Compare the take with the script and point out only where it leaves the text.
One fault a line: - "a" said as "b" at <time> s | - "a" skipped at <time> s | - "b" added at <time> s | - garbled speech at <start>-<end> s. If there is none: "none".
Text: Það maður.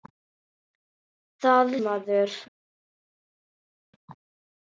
none